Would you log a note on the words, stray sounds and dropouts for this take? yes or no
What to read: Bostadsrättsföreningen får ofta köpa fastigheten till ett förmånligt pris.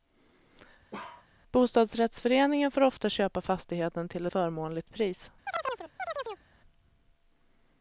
yes